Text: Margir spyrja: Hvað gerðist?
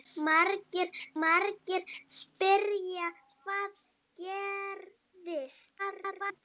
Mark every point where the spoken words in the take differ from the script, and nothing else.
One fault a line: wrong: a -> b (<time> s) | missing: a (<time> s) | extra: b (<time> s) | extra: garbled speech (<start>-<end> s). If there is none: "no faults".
extra: margir (1.2 s)
extra: garbled speech (5.8-6.4 s)